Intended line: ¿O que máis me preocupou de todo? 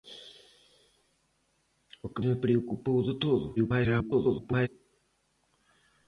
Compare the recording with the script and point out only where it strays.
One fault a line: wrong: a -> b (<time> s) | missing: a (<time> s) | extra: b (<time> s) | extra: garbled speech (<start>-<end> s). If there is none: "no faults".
missing: máis (2.2 s)
extra: garbled speech (3.6-4.7 s)